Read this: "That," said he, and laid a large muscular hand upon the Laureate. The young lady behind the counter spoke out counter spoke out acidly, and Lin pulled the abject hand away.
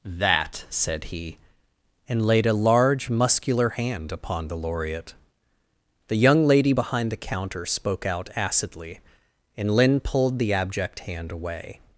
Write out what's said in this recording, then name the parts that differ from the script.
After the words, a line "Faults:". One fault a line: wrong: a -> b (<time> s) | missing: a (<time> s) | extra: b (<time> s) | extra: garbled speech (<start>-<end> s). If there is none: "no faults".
"That," said he, and laid a large muscular hand upon the Laureate. The young lady behind the counter spoke out acidly, and Lin pulled the abject hand away.
Faults:
missing: counter spoke out (8.3 s)